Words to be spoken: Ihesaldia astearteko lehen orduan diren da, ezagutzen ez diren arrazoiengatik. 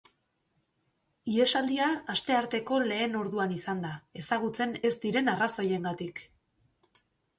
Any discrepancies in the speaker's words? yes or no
yes